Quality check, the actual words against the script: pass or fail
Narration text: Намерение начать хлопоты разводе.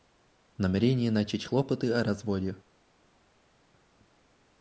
fail